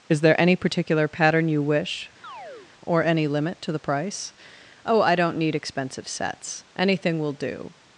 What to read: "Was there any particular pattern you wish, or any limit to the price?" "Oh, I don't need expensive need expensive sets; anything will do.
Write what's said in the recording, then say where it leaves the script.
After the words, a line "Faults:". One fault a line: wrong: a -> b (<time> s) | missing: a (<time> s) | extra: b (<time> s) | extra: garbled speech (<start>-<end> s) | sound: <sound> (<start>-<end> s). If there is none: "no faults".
"Is there any particular pattern you wish, or any limit to the price?" "Oh, I don't need expensive sets; anything will do.
Faults:
wrong: Was -> Is (0.1 s)
sound: chirp (2.2-2.7 s)
missing: need expensive (6.1 s)